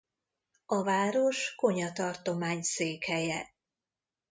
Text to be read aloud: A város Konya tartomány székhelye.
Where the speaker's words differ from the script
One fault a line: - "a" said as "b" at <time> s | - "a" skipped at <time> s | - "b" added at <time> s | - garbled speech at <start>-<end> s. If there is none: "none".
none